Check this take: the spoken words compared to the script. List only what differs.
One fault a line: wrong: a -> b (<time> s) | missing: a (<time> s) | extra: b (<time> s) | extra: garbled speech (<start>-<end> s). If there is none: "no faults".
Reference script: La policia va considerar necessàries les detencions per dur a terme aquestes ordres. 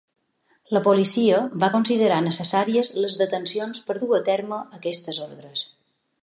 no faults